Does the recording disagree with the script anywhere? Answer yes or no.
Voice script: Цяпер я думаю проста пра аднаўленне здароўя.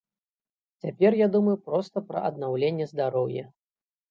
no